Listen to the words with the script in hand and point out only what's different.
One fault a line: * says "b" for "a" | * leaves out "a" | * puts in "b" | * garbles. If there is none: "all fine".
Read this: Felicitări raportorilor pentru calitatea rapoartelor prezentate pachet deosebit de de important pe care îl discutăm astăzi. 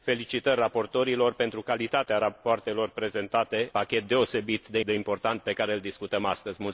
all fine